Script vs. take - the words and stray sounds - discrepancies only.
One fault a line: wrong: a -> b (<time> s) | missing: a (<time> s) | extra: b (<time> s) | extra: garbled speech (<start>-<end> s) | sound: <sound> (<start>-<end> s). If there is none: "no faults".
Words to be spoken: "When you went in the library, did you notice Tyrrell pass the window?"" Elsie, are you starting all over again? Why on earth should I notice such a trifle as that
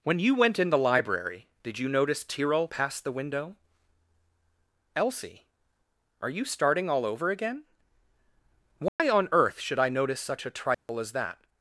sound: dropout (8.9-9.0 s)
sound: dropout (10.7-10.9 s)